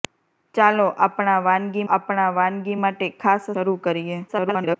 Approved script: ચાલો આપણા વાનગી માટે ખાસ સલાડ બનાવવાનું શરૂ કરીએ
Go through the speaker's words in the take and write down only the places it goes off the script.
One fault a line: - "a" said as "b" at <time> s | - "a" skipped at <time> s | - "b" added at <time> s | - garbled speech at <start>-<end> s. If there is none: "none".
- "આપણા વાનગી" added at 1.9 s
- "સલાડ બનાવવાનું" skipped at 3.5 s
- garbled speech at 4.3-4.8 s